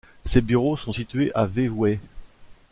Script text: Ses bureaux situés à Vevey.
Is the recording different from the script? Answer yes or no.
yes